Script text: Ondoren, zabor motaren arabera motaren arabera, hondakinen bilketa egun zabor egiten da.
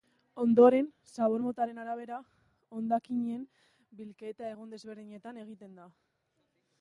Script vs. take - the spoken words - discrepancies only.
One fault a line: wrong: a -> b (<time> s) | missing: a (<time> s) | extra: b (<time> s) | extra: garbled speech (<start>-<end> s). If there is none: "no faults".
missing: motaren arabera (2.2 s)
wrong: zabor -> desberdinetan (4.8 s)